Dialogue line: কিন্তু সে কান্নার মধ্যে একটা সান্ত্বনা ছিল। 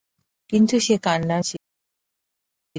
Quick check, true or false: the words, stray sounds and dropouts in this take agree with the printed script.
false